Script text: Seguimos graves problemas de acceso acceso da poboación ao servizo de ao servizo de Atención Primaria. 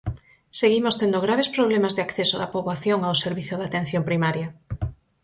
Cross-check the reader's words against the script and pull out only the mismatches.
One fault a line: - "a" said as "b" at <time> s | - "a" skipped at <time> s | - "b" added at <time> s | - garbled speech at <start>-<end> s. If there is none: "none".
- "tendo" added at 1.0 s
- "acceso" skipped at 2.4 s
- "ao servizo de" skipped at 3.7 s